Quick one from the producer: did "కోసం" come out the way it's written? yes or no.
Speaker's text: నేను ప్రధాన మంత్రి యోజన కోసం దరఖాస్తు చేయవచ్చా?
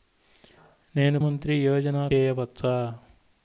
no